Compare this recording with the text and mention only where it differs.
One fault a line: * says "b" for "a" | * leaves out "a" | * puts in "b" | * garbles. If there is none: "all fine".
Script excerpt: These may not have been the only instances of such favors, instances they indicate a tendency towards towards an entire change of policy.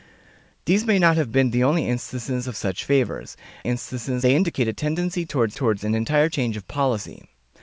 all fine